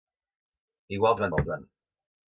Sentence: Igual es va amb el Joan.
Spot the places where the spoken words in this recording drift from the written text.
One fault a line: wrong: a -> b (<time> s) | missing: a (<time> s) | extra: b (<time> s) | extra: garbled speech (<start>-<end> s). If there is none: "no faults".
no faults